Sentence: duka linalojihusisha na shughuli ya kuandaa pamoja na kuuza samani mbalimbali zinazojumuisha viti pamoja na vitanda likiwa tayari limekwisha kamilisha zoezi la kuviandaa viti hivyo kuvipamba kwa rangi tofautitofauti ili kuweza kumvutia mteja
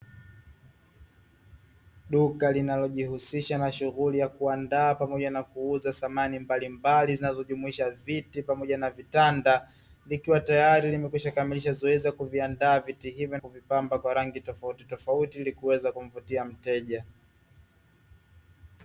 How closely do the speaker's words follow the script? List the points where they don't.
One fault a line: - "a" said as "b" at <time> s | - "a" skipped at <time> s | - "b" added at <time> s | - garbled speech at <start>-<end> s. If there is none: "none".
none